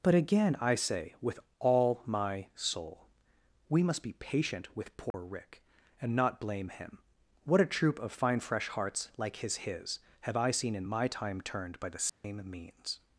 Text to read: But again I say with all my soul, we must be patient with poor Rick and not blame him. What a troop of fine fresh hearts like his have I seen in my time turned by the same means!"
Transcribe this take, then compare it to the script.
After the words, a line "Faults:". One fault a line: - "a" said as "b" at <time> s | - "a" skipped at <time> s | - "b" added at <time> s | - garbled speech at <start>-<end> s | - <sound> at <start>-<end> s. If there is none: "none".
But again I say with all my soul, we must be patient with poor Rick and not blame him. What a troop of fine fresh hearts like his his have I seen in my time turned by the same means!"
Faults:
- dropout at 5.1-5.1 s
- "his" added at 9.6 s
- dropout at 12.1-12.2 s